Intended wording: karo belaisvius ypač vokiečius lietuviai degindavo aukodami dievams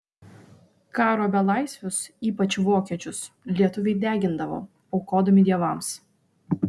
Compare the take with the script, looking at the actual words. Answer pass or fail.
pass